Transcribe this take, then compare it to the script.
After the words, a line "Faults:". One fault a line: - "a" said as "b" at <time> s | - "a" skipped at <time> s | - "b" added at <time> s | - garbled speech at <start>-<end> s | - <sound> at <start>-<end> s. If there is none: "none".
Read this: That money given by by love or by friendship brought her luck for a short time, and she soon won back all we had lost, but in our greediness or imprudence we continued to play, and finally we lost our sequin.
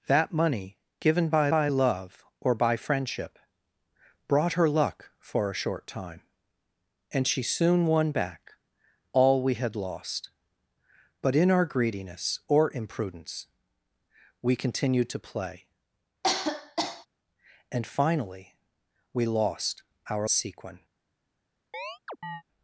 That money given by by love or by friendship brought her luck for a short time, and she soon won back all we had lost, but in our greediness or imprudence we continued to play, and finally we lost our sequin.
Faults:
- cough at 16.2-17.1 s
- chirp at 21.7-22.4 s